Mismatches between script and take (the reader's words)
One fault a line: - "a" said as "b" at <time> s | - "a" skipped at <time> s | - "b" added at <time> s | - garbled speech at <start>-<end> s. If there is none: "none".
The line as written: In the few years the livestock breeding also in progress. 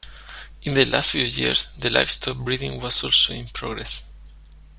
- "last" added at 0.8 s
- "was" added at 2.8 s